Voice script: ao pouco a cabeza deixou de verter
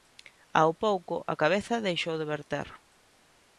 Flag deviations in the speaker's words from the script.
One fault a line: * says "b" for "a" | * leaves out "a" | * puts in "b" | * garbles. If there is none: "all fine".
all fine